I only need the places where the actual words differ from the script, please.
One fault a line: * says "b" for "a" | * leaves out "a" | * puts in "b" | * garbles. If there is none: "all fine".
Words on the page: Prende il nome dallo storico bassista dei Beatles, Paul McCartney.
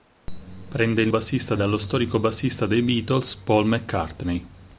* says "bassista" for "nome"